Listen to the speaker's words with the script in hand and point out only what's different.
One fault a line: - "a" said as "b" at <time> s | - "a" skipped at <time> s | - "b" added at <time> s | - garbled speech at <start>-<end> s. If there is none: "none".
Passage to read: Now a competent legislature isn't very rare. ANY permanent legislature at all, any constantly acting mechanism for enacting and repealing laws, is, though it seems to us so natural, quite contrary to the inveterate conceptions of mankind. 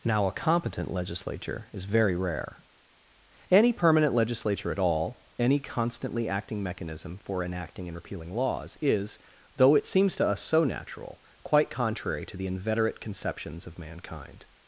- "isn't" said as "is" at 1.7 s